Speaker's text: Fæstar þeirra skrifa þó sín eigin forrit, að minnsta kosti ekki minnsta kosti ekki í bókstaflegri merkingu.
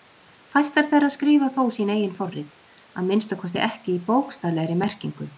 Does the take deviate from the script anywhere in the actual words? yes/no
yes